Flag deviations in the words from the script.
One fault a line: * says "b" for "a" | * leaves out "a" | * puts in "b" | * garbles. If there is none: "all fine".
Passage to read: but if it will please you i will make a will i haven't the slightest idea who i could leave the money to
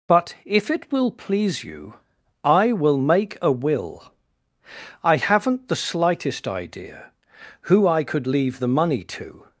all fine